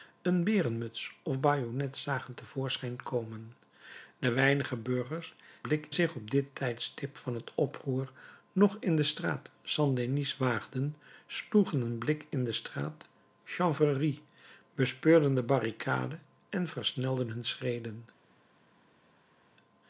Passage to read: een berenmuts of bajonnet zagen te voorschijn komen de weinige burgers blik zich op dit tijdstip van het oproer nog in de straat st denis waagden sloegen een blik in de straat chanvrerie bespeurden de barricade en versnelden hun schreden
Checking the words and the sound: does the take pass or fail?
pass